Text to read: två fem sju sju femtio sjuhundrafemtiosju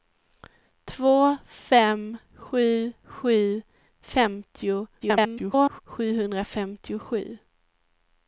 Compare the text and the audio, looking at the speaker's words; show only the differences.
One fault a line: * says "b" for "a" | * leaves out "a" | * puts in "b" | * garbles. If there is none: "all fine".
* garbles